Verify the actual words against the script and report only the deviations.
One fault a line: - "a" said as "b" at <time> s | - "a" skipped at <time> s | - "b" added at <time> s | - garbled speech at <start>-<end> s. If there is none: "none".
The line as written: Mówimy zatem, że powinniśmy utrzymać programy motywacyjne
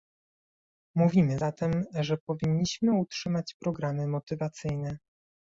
none